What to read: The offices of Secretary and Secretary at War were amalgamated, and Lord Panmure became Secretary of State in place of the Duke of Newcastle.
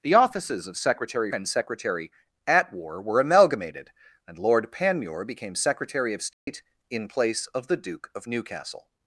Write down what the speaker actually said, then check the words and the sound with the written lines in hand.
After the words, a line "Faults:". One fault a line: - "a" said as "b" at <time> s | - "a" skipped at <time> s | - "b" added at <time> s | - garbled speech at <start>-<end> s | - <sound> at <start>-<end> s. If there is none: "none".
The offices of Secretary and Secretary at War were amalgamated, and Lord Panmure became Secretary of State in place of the Duke of Newcastle.
Faults:
- dropout at 6.3-6.5 s